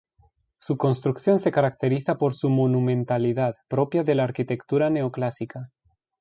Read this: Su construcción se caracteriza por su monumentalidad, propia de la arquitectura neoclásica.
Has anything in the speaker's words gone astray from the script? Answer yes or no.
no